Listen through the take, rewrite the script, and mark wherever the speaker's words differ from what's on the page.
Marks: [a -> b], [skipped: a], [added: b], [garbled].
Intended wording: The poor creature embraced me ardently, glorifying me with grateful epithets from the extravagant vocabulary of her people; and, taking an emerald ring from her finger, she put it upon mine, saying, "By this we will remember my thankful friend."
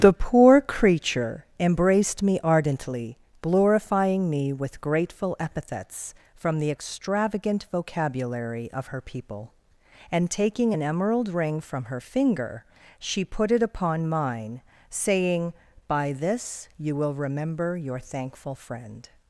The poor creature embraced me ardently, glorifying me with grateful epithets from the extravagant vocabulary of her people; and, taking an emerald ring from her finger, she put it upon mine, saying, "By this [we -> you] will remember [my -> your] thankful friend."